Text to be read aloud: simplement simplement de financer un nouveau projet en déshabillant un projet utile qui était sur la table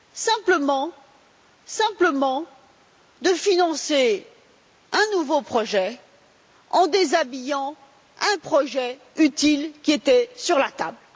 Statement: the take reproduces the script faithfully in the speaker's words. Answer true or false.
true